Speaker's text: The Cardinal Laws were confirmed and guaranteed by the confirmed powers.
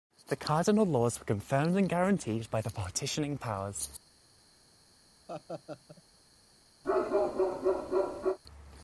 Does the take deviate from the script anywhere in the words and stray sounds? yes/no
yes